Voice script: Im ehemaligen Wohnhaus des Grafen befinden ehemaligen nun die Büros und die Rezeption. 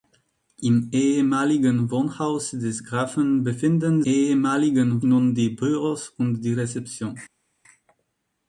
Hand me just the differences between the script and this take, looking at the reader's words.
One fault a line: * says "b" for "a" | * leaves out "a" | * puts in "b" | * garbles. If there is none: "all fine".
all fine